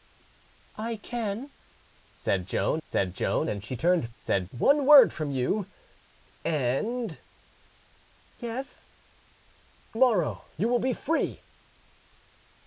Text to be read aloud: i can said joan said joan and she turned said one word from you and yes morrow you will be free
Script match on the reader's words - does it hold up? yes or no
yes